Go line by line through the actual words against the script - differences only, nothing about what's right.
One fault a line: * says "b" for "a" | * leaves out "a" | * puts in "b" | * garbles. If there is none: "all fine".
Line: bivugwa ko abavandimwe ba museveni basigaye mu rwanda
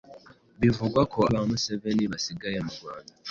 * leaves out "abavandimwe"